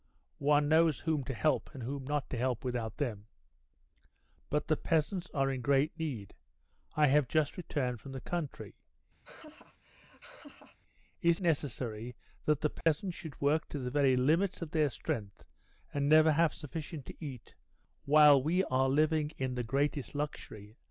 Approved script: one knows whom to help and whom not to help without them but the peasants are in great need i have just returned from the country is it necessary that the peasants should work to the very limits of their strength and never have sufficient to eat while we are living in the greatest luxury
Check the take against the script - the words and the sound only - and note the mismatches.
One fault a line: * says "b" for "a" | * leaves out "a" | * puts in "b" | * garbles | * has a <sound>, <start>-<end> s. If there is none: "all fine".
* has a laugh, 9.2-10.8 s
* leaves out "it"
* has a dropout, 12.8-12.9 s